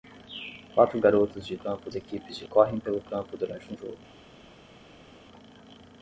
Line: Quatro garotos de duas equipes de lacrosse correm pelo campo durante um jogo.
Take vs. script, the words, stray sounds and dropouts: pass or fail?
fail